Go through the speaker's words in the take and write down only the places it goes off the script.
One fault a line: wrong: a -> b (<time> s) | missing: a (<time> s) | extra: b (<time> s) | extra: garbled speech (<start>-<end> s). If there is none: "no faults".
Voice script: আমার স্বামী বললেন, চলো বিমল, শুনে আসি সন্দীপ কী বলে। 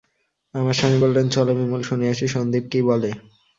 no faults